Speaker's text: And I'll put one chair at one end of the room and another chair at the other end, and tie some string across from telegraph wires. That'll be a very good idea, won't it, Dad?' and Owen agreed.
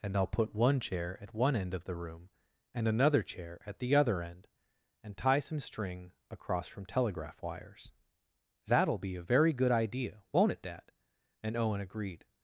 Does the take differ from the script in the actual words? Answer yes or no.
no